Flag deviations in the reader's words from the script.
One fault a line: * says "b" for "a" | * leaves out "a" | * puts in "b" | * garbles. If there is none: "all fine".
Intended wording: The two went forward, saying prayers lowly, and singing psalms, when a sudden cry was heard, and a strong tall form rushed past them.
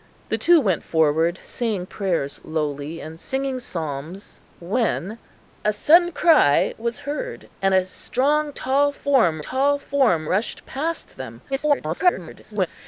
* puts in "tall form"
* garbles